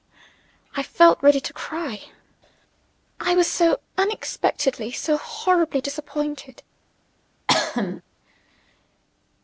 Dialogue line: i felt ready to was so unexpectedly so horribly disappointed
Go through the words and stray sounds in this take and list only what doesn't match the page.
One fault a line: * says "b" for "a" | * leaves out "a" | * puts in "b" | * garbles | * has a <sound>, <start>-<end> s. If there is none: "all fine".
* puts in "cry i"
* has a cough, 7.5-8.0 s